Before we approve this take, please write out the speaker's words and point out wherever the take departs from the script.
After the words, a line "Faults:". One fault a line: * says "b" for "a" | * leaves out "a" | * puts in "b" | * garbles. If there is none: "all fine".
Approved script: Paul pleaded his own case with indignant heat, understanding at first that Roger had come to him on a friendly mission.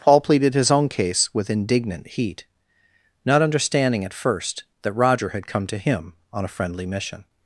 Paul pleaded his own case with indignant heat, not understanding at first that Roger had come to him on a friendly mission.
Faults:
* puts in "not"